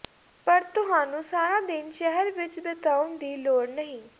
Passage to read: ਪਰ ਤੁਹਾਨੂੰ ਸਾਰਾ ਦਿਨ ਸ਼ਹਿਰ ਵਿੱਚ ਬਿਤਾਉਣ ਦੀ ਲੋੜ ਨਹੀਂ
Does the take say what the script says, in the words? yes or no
yes